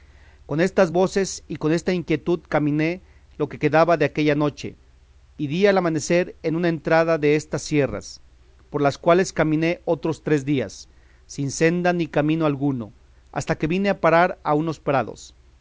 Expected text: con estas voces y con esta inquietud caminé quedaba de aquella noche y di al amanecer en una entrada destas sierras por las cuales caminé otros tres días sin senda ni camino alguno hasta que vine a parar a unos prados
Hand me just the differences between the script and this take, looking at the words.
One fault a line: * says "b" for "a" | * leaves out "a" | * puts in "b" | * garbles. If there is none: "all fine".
* puts in "lo que"